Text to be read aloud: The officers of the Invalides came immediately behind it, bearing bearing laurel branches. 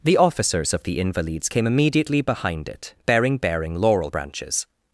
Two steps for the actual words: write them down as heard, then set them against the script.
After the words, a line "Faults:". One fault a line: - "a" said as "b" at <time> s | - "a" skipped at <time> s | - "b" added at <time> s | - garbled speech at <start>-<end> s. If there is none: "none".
The officers of the Invalides came immediately behind it, bearing bearing laurel branches.
Faults:
none